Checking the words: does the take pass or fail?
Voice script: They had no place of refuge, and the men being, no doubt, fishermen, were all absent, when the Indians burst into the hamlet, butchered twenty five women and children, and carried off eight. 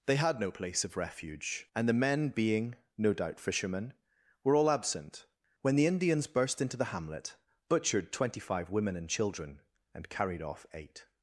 pass